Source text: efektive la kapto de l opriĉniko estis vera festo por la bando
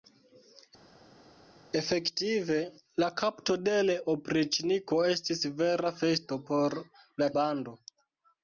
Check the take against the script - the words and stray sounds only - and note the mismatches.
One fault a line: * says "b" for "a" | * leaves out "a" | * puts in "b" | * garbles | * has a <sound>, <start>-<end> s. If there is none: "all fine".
all fine